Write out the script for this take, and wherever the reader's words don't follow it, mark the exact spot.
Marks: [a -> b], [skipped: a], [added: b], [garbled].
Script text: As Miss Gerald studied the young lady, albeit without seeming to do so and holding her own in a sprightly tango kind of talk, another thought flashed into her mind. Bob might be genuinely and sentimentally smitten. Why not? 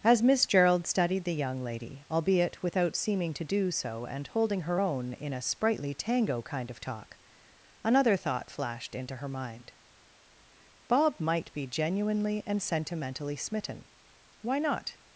As Miss Gerald studied the young lady, albeit without seeming to do so and holding her own in a sprightly tango kind of talk, another thought flashed into her mind. Bob might be genuinely and sentimentally smitten. Why not?